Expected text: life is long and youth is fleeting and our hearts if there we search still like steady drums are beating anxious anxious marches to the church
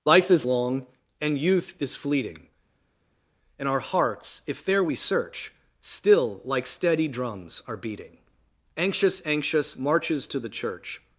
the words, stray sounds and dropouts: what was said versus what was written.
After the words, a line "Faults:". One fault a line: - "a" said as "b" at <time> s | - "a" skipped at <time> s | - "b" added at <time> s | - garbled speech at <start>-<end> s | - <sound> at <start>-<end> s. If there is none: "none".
life is long and youth is fleeting and our hearts if there we search still like steady drums are beating anxious anxious marches to the church
Faults:
none